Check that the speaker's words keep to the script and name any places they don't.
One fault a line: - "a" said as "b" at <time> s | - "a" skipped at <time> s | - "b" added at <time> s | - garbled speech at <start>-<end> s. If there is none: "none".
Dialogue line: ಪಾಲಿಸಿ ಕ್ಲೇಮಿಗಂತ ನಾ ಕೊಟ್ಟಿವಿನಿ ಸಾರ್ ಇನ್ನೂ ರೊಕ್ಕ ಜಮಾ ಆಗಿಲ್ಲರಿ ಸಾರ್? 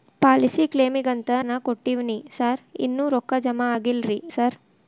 none